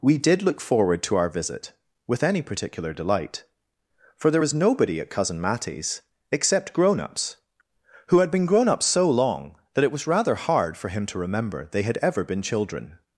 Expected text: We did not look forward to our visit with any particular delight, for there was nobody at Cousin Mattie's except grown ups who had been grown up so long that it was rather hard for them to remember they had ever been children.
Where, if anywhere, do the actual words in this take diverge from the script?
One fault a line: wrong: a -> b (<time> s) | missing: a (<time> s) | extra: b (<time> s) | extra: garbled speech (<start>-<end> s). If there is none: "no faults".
missing: not (0.4 s)
wrong: them -> him (10.9 s)